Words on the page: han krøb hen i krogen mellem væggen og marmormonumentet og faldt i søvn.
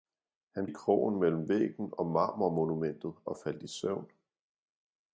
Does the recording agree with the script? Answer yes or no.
no